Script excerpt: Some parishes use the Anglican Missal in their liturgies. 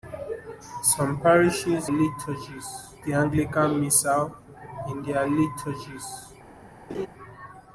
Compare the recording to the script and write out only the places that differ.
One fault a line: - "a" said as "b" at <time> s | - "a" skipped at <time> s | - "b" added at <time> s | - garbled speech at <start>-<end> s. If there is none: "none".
- "use" said as "liturgies" at 1.9 s